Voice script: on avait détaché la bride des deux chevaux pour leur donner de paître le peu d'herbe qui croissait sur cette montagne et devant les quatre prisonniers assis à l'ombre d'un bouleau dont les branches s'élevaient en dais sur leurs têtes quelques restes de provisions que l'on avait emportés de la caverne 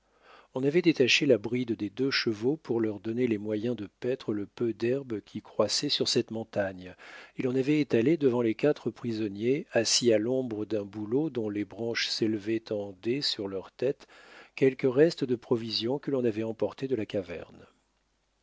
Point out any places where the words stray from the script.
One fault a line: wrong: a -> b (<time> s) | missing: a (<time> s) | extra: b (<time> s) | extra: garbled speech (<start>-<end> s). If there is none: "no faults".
extra: les moyens (3.3 s)
extra: l'on avait étalé (7.4 s)